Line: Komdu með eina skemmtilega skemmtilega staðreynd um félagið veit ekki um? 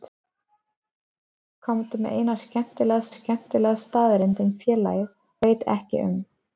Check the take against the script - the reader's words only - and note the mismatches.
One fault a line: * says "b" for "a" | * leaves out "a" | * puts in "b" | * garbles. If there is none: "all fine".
all fine